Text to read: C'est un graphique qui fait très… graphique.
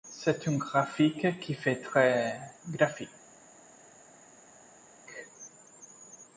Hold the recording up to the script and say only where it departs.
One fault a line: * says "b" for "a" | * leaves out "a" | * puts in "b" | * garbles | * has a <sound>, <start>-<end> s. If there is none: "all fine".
all fine